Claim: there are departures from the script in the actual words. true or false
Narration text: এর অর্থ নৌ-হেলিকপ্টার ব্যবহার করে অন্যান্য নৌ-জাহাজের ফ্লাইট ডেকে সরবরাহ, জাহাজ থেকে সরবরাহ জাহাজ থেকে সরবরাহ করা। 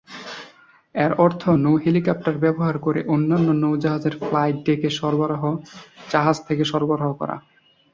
true